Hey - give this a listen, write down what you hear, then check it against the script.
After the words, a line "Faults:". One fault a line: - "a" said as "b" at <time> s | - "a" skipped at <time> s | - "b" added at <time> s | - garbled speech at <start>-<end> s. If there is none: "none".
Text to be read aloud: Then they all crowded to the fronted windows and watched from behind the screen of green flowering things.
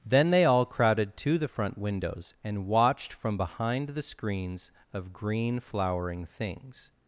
Then they all crowded to the front windows and watched from behind the screens of green flowering things.
Faults:
- "fronted" said as "front" at 1.5 s
- "screen" said as "screens" at 4.0 s